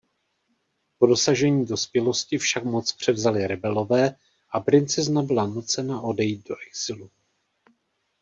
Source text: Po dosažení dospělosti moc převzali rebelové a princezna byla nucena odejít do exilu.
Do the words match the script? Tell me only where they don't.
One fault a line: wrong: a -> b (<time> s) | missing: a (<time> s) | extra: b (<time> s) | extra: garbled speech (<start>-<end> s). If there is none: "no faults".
extra: však (2.4 s)